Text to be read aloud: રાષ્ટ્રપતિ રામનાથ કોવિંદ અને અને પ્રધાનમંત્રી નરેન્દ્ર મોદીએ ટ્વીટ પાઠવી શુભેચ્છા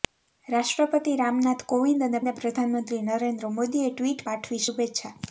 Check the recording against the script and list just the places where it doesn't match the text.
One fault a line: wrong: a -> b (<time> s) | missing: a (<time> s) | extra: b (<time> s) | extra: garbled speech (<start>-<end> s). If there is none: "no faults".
no faults